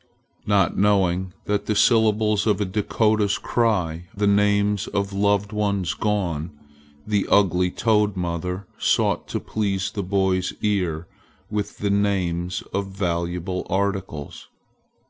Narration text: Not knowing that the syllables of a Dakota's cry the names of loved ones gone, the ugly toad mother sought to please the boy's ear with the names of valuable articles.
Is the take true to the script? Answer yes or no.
yes